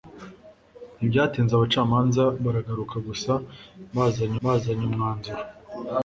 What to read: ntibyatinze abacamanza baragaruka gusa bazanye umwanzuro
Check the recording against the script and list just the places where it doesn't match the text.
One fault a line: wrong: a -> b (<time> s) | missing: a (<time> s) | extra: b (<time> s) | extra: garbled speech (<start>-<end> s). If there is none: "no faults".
extra: bazanye (4.4 s)